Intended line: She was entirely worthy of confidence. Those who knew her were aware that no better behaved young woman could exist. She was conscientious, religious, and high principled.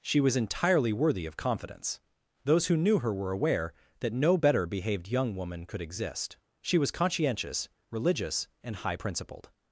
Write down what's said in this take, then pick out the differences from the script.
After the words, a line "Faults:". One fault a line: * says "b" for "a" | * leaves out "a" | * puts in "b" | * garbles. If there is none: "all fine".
She was entirely worthy of confidence. Those who knew her were aware that no better behaved young woman could exist. She was conscientious, religious, and high principled.
Faults:
all fine